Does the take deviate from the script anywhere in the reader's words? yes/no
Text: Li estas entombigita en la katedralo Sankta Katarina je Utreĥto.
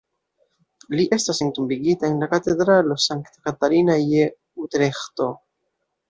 no